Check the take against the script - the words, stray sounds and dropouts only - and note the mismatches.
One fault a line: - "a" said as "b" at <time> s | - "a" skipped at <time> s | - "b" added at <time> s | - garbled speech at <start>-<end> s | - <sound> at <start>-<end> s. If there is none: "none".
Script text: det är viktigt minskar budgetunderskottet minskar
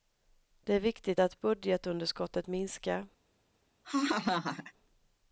- "minskar" said as "att" at 1.2 s
- laugh at 3.8-4.7 s